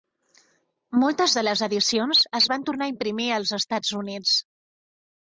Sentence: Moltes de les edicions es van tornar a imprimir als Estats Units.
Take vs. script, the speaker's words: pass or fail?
pass